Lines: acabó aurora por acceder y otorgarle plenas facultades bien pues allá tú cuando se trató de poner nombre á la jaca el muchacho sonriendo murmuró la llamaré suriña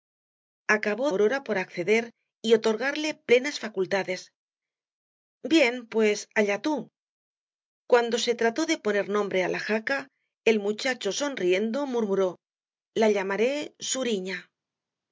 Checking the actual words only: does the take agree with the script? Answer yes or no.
yes